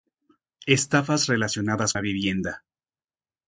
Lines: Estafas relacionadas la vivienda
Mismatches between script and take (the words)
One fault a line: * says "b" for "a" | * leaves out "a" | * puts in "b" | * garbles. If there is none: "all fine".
all fine